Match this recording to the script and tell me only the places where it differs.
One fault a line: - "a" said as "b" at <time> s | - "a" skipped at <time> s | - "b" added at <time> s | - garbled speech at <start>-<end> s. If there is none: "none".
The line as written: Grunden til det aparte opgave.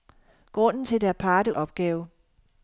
none